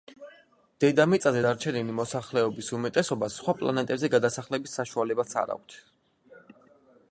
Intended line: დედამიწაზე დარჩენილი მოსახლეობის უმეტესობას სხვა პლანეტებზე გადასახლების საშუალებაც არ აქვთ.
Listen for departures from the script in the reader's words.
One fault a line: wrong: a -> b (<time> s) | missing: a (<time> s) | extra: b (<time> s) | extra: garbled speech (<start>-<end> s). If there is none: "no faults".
no faults